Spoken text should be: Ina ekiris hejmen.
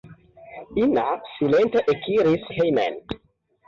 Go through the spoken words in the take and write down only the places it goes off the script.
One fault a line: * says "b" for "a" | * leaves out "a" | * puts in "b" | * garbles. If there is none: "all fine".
* puts in "silente"